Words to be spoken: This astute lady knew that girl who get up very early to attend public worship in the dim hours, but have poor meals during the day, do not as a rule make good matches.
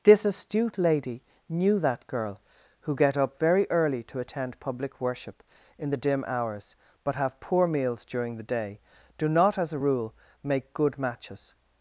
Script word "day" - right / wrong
right